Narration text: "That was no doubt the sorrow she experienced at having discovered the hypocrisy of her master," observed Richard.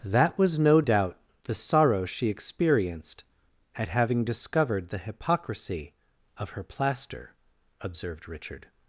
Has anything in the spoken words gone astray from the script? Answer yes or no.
yes